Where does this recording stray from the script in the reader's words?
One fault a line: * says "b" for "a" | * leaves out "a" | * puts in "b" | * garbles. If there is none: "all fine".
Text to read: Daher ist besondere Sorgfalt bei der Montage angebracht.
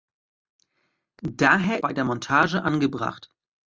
* leaves out "ist besondere Sorgfalt"